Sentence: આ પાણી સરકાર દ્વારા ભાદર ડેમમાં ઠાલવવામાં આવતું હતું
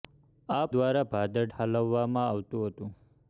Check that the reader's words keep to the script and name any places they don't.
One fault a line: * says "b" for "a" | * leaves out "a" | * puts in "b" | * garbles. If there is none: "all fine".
* leaves out "પાણી સરકાર"
* leaves out "ડેમમાં"